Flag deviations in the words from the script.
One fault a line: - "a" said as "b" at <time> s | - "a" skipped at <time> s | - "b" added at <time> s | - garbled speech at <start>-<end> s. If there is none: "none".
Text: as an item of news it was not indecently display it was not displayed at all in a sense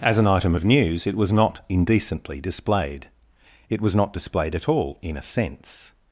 - "display" said as "displayed" at 2.4 s